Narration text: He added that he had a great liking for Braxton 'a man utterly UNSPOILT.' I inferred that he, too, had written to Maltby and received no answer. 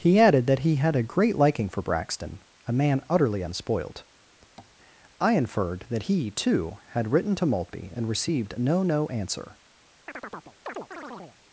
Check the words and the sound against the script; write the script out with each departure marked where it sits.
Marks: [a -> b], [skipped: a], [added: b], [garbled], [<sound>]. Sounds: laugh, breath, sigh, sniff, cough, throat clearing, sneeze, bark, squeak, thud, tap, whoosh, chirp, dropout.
He added that he had a great liking for Braxton 'a man utterly UNSPOILT.' [tap] I inferred that he, too, had written to Maltby and received no [added: no] answer. [chirp]